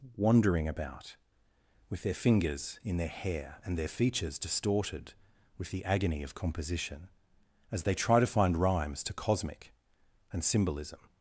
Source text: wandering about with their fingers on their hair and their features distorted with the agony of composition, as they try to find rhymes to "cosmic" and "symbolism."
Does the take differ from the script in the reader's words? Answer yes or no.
yes